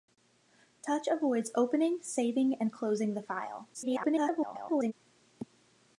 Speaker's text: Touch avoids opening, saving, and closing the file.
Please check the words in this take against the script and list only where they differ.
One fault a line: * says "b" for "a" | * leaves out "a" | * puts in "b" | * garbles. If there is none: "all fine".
* garbles